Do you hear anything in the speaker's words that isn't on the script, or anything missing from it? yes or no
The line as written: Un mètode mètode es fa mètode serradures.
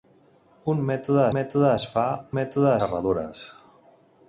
no